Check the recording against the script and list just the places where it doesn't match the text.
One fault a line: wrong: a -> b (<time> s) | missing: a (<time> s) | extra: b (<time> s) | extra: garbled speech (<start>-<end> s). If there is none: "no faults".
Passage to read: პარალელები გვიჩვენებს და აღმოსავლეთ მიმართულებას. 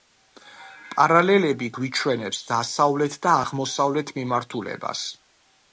extra: დასავლეთ (2.5 s)